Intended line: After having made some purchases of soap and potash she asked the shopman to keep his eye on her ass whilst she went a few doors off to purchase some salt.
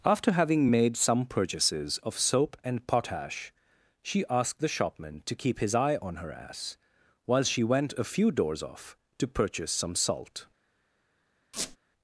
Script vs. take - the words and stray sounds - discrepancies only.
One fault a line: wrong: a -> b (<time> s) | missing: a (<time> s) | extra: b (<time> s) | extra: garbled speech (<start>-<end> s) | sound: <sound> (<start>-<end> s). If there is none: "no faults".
wrong: whilst -> while (7.3 s)
sound: squeak (11.5-11.8 s)